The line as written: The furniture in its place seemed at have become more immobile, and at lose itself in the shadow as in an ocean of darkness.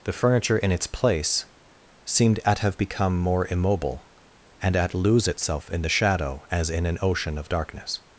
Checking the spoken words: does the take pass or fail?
pass